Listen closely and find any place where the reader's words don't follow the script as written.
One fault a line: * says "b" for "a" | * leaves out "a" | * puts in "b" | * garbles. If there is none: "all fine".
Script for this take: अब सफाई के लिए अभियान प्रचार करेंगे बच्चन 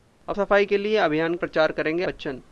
all fine